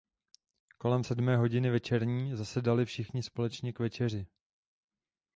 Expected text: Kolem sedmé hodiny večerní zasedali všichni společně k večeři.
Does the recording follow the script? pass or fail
pass